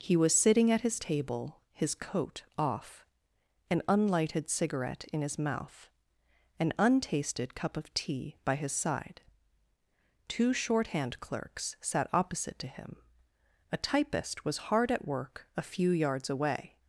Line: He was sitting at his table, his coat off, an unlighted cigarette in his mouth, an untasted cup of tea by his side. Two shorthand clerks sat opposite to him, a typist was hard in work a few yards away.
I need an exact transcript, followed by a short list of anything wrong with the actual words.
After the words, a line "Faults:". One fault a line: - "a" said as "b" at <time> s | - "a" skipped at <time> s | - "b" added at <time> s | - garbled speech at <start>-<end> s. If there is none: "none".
He was sitting at his table, his coat off, an unlighted cigarette in his mouth, an untasted cup of tea by his side. Two shorthand clerks sat opposite to him, a typist was hard at work a few yards away.
Faults:
- "in" said as "at" at 14.9 s